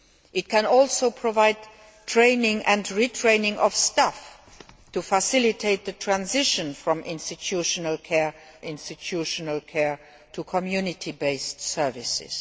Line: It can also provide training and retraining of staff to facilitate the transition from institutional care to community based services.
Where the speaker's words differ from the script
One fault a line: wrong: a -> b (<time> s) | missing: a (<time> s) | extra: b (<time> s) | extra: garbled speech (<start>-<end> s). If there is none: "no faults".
extra: institutional care (8.6 s)